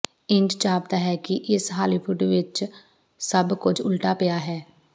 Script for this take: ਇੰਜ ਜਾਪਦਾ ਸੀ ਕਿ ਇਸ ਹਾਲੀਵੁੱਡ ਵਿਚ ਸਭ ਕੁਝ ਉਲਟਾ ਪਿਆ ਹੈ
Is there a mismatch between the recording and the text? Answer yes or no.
yes